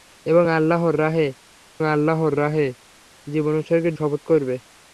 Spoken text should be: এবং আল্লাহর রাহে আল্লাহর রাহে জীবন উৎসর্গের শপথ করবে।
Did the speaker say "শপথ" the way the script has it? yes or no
yes